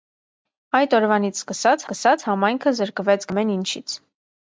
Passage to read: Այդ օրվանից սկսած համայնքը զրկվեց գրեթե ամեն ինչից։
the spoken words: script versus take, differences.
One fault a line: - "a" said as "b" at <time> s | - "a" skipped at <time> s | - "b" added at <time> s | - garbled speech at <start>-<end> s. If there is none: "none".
- "սկսած" added at 1.8 s
- "գրեթե" skipped at 3.3 s